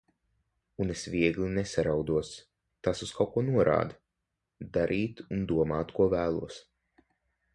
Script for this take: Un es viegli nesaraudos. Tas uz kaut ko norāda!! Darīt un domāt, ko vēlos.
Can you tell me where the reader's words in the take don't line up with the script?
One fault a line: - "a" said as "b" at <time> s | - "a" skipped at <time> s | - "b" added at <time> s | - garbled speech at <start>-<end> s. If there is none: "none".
none